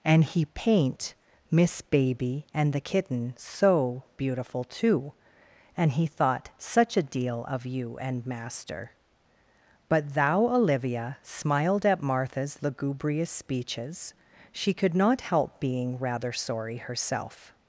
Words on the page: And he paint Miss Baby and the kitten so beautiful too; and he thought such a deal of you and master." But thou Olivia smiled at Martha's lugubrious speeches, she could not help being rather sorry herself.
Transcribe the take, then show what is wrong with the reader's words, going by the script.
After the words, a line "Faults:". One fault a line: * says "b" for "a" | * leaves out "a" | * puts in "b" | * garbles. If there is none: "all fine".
And he paint Miss Baby and the kitten so beautiful too; and he thought such a deal of you and master." But thou Olivia smiled at Martha's lugubrious speeches, she could not help being rather sorry herself.
Faults:
all fine